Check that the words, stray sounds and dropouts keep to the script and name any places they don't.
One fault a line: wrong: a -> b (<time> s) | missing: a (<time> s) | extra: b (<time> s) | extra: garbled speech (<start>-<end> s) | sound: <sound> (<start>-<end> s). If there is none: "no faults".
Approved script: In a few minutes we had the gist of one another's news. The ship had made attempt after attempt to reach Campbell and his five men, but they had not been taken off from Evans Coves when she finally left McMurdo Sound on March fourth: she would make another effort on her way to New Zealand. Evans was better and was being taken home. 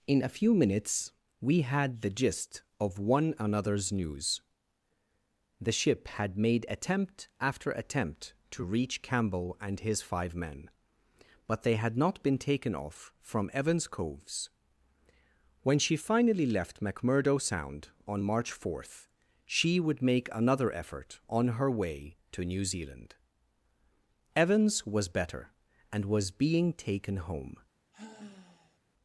sound: sigh (27.9-28.8 s)